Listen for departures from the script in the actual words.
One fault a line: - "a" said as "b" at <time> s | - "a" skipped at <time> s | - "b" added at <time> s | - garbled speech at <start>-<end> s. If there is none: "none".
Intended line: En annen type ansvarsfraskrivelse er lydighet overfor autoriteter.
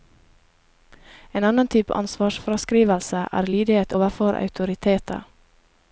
none